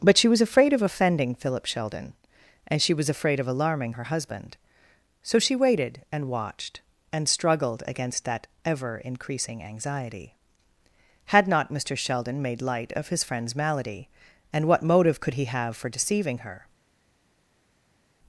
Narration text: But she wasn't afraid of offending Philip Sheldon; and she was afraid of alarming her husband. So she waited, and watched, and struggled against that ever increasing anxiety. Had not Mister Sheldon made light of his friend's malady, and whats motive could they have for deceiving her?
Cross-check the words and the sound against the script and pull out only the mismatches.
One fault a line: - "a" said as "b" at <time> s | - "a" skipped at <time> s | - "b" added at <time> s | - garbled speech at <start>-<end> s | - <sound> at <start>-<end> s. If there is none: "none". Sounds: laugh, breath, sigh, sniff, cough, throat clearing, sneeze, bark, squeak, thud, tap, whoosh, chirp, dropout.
- "wasn't" said as "was" at 0.3 s
- "whats" said as "what" at 14.7 s
- "they" said as "he" at 15.3 s